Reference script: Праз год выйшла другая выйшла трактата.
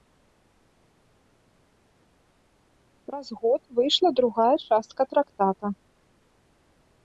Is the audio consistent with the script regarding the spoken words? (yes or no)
no